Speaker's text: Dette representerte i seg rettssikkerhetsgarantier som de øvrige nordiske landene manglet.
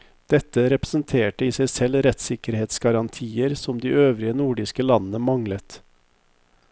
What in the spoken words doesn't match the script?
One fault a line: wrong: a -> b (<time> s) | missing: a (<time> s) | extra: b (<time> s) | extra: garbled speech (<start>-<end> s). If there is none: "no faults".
extra: selv (1.7 s)